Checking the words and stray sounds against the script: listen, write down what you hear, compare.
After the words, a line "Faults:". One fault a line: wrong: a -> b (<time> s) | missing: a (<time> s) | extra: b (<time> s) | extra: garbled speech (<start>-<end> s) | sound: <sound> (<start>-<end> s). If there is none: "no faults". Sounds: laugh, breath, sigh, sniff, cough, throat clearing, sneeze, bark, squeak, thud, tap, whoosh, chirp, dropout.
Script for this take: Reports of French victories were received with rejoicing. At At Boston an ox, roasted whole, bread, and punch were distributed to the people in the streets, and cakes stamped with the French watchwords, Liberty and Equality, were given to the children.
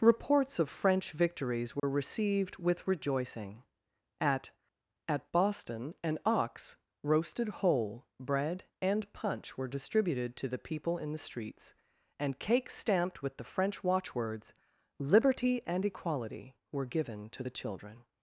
Reports of French victories were received with rejoicing. At At Boston an ox, roasted whole, bread, and punch were distributed to the people in the streets, and cakes stamped with the French watchwords, Liberty and Equality, were given to the children.
Faults:
sound: dropout (1.8-1.8 s)